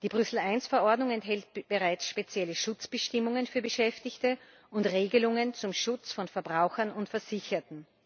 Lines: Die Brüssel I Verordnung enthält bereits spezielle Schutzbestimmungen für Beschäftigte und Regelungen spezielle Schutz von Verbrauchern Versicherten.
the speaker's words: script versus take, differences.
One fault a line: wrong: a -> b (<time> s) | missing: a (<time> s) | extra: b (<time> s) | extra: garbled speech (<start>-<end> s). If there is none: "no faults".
wrong: spezielle -> zum (5.5 s)
extra: und (6.9 s)